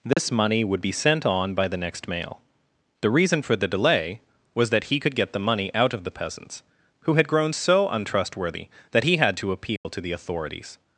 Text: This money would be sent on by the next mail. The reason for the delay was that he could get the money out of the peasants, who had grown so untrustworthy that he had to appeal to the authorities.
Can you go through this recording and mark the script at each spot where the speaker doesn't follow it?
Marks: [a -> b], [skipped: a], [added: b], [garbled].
This money would be sent on by the next mail. The reason for the delay was that he could get the money out of the peasants, who had grown so untrustworthy that he had to appeal to the authorities.